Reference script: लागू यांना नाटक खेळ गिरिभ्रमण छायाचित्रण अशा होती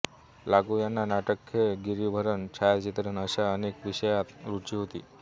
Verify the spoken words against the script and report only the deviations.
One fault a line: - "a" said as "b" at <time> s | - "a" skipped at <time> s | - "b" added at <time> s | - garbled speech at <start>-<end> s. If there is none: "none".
- "अनेक विषयांत रुची" added at 3.5 s